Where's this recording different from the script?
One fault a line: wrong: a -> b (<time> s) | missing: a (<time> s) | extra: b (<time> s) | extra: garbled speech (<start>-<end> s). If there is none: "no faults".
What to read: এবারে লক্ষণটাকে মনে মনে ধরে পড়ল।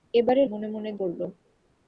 missing: লক্ষণটাকে (0.4 s)
missing: ধরে (0.9 s)